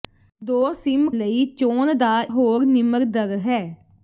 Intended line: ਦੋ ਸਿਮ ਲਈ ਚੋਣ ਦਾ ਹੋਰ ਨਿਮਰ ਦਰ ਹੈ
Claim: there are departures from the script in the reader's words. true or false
false